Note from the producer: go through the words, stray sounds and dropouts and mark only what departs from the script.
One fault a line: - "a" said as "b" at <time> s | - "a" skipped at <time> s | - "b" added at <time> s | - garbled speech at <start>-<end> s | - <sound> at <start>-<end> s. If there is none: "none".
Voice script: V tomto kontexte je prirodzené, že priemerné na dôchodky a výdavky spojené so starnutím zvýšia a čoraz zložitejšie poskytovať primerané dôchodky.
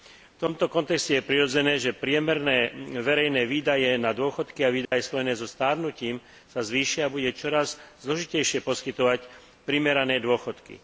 - "verejné výdavky" added at 3.0 s
- dropout at 4.8-4.9 s
- "sa" added at 6.5 s
- "bude" added at 7.1 s